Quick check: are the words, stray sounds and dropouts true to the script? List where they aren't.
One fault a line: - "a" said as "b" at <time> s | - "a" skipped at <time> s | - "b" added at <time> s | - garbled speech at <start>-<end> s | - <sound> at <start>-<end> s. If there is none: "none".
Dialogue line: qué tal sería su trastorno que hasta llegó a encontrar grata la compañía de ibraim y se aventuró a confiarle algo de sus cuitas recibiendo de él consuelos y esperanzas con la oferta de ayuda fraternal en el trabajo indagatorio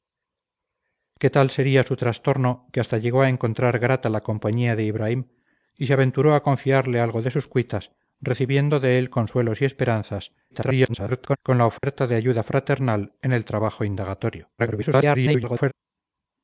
- garbled speech at 10.5-11.4 s
- dropout at 11.8-11.8 s
- garbled speech at 14.6-15.7 s